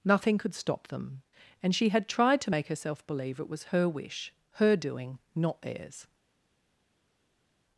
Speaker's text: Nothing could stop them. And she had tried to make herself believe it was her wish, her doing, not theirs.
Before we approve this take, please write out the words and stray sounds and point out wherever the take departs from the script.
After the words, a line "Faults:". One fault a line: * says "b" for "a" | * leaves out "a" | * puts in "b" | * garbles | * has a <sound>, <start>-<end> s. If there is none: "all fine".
Nothing could stop them. And she had tried to make herself believe it was her wish, her doing, not theirs.
Faults:
all fine